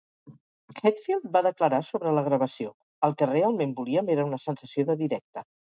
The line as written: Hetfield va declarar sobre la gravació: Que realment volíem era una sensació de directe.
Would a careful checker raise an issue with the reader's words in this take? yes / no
yes